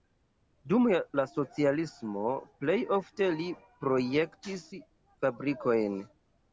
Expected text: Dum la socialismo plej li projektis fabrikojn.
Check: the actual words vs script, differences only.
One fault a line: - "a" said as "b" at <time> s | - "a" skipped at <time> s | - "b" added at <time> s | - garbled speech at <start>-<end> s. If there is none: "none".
- "ofte" added at 3.0 s